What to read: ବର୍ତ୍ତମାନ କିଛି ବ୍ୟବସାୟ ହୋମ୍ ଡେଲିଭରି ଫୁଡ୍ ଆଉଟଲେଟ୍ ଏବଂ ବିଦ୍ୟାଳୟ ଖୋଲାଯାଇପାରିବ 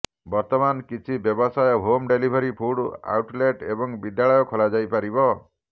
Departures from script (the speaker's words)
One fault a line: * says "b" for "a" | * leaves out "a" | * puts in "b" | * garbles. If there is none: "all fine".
all fine